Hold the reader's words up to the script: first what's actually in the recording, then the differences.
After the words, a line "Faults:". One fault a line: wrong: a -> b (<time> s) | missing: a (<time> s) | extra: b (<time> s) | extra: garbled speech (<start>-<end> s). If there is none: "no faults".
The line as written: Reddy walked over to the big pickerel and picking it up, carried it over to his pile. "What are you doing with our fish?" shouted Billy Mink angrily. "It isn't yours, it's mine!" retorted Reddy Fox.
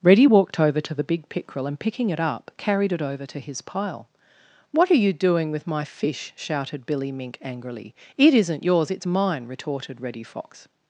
Reddy walked over to the big pickerel and picking it up, carried it over to his pile. "What are you doing with my fish?" shouted Billy Mink angrily. "It isn't yours, it's mine!" retorted Reddy Fox.
Faults:
wrong: our -> my (5.7 s)